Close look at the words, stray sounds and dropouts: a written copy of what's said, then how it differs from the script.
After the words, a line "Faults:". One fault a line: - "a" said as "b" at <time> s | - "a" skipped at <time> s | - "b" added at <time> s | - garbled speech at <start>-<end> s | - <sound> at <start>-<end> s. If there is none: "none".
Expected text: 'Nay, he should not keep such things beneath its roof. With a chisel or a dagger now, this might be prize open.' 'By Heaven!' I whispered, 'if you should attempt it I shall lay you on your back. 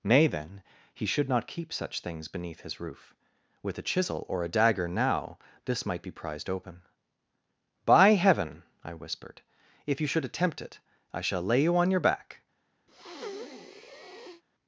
'Nay, then, he should not keep such things beneath his roof. With a chisel or a dagger now, this might be prized open.' 'By Heaven!' I whispered, 'if you should attempt it I shall lay you on your back.
Faults:
- "then" added at 0.3 s
- "its" said as "his" at 2.6 s
- "prize" said as "prized" at 6.1 s
- breath at 12.9-14.4 s